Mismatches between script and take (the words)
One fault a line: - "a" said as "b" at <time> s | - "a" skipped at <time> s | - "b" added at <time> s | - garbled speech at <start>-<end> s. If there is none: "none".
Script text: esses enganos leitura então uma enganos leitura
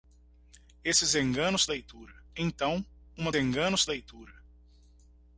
none